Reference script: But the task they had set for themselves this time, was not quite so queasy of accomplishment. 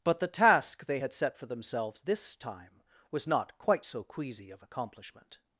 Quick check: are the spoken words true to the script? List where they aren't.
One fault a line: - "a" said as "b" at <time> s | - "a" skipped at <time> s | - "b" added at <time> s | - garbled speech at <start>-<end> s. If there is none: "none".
none